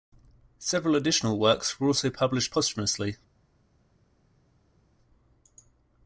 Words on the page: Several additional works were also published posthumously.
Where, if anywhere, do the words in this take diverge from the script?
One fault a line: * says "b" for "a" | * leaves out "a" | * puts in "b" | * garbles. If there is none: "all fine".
all fine